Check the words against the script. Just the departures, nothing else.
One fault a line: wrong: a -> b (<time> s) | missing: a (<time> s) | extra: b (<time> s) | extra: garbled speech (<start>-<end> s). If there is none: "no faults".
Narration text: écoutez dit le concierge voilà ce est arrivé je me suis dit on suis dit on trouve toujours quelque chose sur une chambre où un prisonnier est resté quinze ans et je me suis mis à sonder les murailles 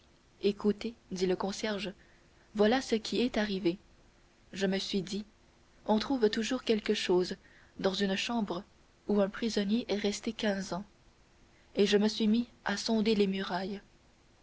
extra: qui (3.0 s)
missing: suis dit on (6.0 s)
wrong: sur -> dans (7.8 s)